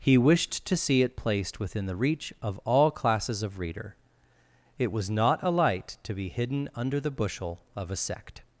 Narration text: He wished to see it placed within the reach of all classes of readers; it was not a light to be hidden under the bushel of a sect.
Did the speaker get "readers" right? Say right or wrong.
wrong